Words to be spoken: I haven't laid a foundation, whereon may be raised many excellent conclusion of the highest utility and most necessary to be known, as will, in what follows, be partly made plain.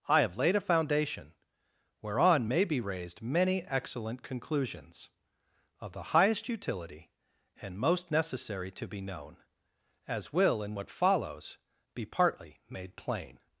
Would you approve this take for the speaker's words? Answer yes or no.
no